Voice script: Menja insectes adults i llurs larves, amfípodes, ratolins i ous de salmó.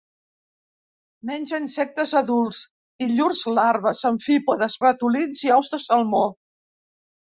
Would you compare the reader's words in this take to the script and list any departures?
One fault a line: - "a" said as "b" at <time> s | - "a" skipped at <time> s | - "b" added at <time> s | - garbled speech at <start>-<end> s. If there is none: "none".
none